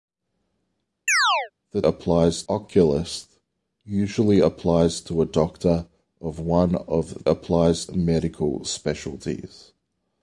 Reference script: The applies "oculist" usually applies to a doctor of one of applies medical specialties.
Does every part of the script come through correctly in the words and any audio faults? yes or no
no